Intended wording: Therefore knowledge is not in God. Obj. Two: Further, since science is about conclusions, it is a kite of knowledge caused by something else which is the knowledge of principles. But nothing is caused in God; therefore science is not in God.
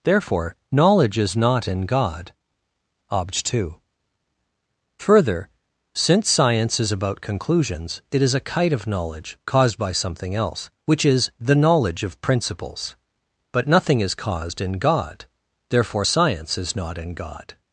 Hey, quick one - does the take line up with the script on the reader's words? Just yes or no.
yes